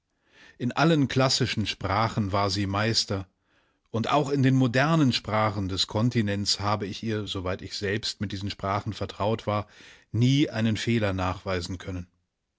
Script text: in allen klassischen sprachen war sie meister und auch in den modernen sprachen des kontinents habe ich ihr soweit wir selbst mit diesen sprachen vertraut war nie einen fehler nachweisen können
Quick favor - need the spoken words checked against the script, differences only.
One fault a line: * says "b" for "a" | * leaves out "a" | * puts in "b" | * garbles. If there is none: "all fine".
* says "ich" for "wir"